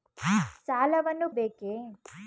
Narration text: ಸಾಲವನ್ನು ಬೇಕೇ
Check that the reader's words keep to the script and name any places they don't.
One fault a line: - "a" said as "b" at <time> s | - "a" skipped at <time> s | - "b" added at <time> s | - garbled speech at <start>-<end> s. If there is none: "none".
none